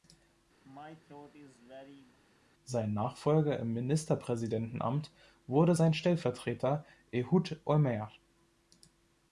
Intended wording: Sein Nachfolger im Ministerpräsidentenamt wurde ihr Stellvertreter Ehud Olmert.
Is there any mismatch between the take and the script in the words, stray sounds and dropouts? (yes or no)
yes